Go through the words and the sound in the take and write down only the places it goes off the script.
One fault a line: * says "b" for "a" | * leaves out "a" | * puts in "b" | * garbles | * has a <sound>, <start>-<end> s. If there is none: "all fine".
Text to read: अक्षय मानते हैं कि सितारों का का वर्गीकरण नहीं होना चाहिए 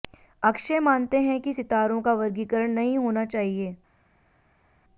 * leaves out "का"